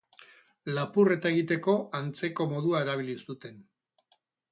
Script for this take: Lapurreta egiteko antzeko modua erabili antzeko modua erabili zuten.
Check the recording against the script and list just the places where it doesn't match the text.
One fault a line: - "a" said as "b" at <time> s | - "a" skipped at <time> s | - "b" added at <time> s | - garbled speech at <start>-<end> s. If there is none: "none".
- "antzeko modua erabili" skipped at 3.2 s